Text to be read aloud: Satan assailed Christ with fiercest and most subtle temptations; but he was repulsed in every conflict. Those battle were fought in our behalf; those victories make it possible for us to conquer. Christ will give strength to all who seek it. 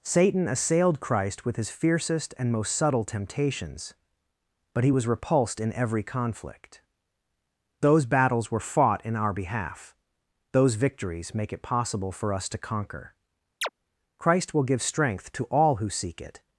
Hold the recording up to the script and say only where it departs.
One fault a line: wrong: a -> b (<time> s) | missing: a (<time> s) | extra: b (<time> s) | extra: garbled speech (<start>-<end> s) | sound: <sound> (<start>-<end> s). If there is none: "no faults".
extra: his (1.6 s)
wrong: battle -> battles (8.1 s)
sound: chirp (13.6-13.7 s)